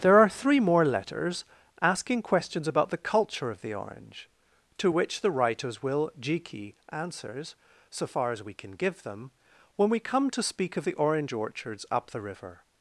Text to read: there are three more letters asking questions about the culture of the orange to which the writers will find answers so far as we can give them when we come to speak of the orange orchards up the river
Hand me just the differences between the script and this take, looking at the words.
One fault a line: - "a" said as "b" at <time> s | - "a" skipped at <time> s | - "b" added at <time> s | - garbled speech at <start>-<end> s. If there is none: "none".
- "find" said as "jiki" at 6.2 s